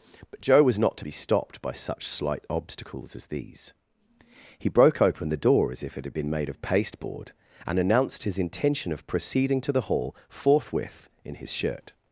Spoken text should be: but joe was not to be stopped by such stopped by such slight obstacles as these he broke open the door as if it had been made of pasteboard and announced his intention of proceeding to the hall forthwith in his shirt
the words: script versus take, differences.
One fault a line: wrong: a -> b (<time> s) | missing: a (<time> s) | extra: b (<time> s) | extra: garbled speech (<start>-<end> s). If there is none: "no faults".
missing: stopped by such (2.1 s)